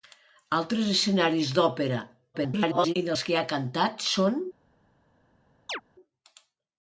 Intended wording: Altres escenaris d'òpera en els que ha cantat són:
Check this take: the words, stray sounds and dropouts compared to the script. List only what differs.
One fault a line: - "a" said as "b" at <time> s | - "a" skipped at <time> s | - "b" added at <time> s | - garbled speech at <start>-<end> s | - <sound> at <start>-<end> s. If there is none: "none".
- garbled speech at 2.3-2.9 s
- chirp at 5.7-5.8 s